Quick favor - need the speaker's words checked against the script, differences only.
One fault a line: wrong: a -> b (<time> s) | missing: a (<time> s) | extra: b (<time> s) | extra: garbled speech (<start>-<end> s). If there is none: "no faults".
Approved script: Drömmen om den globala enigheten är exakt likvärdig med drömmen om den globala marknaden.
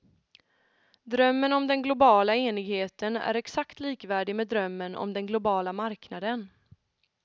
no faults